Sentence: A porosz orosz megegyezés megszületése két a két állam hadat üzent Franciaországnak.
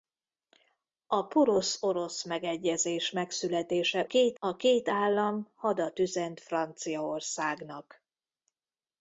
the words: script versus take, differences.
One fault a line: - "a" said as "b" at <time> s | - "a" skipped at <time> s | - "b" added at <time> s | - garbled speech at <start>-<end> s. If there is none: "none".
none